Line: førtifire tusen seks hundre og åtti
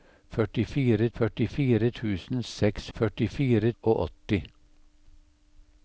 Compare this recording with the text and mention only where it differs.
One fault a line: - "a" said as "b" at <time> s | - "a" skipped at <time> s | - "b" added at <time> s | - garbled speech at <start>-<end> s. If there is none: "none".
- "førtifire" added at 1.2 s
- "hundre" said as "førtifire" at 3.0 s